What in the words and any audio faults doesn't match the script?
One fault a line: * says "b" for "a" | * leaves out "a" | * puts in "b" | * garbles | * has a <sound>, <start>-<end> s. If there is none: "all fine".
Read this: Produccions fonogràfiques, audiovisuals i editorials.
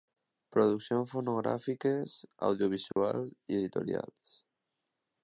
* has a dropout, 2.9-3.0 s